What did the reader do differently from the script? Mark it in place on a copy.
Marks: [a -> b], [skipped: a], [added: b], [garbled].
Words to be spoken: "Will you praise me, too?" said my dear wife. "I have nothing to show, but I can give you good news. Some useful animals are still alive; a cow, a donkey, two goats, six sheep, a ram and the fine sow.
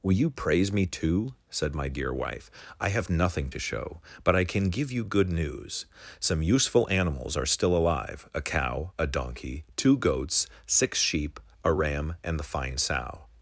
"Will you praise me, too?" said my dear wife. "I have nothing to show, but I can give you good news. Some useful animals are still alive; a cow, a donkey, two goats, six sheep, a ram and the fine sow.